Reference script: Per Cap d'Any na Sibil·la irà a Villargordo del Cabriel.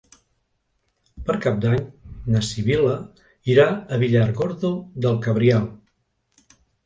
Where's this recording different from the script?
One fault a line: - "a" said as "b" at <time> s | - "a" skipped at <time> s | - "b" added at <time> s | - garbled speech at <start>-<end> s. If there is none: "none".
none